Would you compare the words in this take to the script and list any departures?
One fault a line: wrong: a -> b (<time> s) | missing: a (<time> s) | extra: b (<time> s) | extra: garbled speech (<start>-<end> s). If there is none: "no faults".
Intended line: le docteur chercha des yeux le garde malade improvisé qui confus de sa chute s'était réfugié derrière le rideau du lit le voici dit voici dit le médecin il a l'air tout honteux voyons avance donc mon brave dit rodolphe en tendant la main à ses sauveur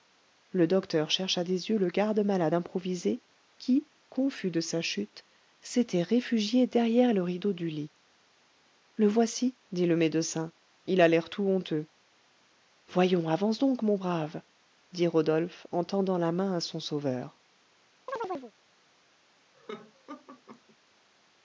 missing: voici dit (9.9 s)
wrong: ses -> son (16.6 s)